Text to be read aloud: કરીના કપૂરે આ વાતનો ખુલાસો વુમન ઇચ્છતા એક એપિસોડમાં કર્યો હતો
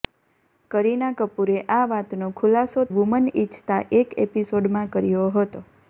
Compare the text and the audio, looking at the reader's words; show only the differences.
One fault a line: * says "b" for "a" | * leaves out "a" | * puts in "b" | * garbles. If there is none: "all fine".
all fine